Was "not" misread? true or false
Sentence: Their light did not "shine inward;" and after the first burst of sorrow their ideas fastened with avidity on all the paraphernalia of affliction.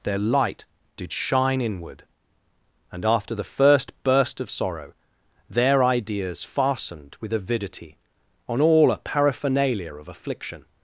true